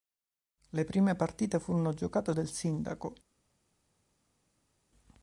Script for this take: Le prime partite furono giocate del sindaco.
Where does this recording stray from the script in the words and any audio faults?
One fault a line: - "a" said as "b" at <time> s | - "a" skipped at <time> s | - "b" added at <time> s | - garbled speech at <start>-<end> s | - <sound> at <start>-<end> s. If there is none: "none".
none